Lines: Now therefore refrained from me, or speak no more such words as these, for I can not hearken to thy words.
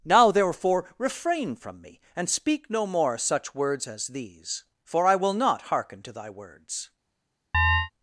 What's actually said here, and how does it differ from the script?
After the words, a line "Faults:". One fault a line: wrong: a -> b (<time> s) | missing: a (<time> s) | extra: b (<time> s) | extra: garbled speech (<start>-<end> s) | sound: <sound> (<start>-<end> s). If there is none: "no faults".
Now therefore refrain from me, and speak no more such words as these, for I will not hearken to thy words.
Faults:
wrong: refrained -> refrain (1.0 s)
wrong: or -> and (2.1 s)
wrong: can -> will (5.1 s)
sound: chirp (7.5-7.9 s)